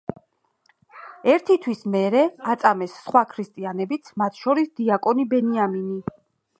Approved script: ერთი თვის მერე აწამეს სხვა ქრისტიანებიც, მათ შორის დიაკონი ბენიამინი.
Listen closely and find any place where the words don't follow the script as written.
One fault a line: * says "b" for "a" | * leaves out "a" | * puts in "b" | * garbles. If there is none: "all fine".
all fine